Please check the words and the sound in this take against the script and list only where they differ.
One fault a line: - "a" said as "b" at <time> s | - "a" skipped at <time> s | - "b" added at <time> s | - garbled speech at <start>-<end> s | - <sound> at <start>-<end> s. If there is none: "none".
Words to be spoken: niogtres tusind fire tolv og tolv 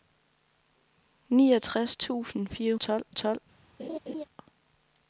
- laugh at 3.8-4.2 s